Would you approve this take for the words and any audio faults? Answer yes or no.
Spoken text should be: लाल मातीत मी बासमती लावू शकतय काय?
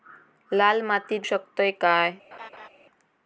no